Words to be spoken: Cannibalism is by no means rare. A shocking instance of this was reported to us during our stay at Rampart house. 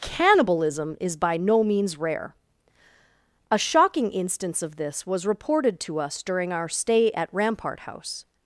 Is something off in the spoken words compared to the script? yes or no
no